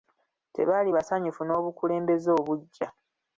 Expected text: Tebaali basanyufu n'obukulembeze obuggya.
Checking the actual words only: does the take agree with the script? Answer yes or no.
yes